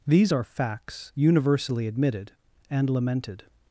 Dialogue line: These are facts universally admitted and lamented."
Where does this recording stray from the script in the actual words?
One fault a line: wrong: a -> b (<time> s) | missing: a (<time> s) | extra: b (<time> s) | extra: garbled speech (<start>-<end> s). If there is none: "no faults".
no faults